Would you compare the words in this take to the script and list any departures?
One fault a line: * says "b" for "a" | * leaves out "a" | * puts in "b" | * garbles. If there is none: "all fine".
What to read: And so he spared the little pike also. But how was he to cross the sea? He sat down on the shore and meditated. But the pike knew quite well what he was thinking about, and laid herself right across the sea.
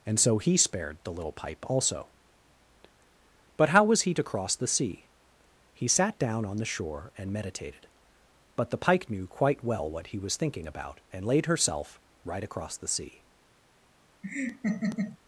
* says "pipe" for "pike"